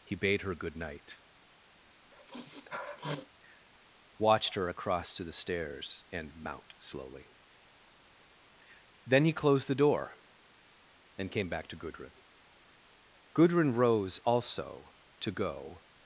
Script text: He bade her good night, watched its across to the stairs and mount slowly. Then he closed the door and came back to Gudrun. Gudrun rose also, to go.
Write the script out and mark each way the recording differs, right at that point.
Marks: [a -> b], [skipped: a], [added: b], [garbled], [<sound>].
He bade her good night, [sniff] watched [its -> her] across to the stairs and mount slowly. Then he closed the door and came back to Gudrun. Gudrun rose also, to go.